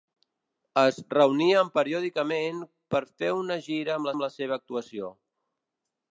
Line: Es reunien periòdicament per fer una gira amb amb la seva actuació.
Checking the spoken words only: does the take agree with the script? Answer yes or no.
yes